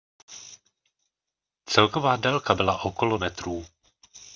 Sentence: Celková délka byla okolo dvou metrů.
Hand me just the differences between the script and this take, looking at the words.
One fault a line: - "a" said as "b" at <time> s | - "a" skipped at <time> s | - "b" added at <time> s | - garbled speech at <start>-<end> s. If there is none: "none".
- "dvou" skipped at 3.2 s